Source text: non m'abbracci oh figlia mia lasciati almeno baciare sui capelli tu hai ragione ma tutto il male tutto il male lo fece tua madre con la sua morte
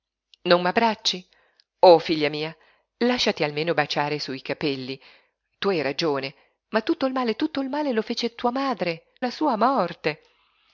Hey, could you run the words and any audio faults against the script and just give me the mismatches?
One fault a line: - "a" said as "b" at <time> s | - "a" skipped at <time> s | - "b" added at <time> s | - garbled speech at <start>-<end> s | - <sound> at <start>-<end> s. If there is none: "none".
- "con" skipped at 9.1 s